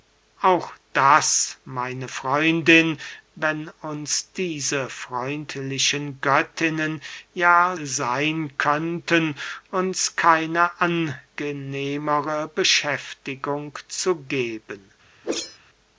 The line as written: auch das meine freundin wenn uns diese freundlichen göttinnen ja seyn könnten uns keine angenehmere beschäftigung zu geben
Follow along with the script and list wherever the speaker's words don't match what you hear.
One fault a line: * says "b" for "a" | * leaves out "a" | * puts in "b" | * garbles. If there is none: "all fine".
all fine